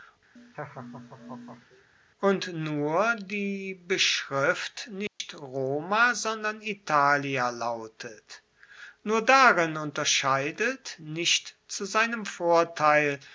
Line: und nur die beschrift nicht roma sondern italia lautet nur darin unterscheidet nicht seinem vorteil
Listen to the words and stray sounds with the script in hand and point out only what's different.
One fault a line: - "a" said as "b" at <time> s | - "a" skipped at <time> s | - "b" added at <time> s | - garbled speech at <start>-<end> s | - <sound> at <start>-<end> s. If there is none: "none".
- laugh at 0.4-1.9 s
- dropout at 5.1-5.2 s
- "zu" added at 11.7 s